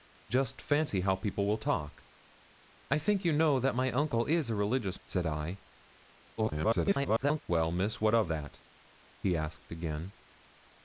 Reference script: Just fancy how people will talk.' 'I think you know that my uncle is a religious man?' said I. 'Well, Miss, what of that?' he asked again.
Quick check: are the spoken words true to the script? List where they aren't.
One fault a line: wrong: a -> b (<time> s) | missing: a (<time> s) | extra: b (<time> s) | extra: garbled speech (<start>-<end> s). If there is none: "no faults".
missing: man (5.0 s)
extra: garbled speech (6.4-7.4 s)